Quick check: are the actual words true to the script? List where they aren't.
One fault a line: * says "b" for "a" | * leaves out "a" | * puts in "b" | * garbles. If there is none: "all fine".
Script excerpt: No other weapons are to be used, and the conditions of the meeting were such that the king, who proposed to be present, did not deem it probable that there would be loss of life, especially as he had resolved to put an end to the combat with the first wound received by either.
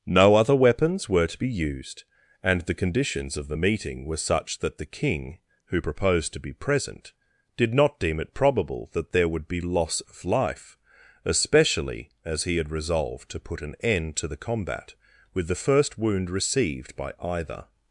* says "were" for "are"